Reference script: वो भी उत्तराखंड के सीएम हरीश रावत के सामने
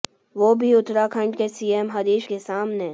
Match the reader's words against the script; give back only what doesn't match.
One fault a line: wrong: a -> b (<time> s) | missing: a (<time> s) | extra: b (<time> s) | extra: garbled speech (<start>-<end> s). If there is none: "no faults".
missing: रावत (2.3 s)